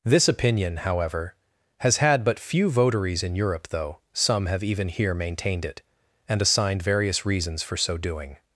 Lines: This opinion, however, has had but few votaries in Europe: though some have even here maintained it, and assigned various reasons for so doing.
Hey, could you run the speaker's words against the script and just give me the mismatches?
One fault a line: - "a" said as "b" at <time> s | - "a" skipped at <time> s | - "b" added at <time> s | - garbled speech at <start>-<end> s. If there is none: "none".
none